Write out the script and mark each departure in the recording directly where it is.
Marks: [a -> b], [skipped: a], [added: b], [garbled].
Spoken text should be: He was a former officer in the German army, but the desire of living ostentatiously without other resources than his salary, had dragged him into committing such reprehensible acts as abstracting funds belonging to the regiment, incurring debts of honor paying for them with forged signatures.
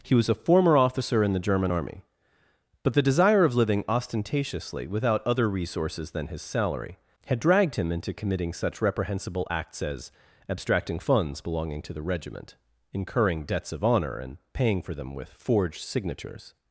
He was a former officer in the German army, but the desire of living ostentatiously without other resources than his salary, had dragged him into committing such reprehensible acts as abstracting funds belonging to the regiment, incurring debts of honor [added: and] paying for them with forged signatures.